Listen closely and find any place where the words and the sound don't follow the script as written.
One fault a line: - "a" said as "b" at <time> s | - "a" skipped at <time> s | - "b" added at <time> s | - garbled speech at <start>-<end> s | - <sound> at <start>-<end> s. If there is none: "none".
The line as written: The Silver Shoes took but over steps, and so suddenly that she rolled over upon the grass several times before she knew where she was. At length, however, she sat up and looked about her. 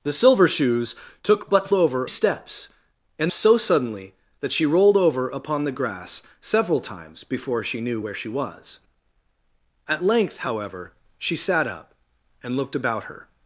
none